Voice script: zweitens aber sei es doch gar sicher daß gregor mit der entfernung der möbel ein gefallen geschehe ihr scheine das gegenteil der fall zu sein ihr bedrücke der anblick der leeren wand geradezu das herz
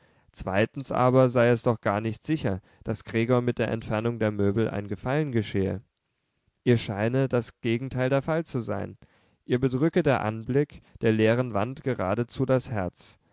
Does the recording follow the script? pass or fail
fail